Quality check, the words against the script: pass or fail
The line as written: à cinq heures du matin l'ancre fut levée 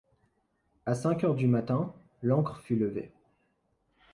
pass